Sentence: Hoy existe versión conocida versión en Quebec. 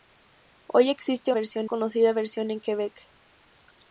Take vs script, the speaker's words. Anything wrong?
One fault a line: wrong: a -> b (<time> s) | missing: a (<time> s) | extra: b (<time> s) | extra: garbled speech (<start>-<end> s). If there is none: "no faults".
no faults